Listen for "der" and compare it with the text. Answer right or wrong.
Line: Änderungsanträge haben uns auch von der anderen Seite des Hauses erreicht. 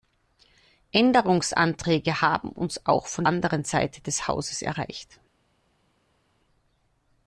wrong